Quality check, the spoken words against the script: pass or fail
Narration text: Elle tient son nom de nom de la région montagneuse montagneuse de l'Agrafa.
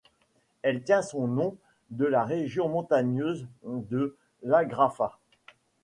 fail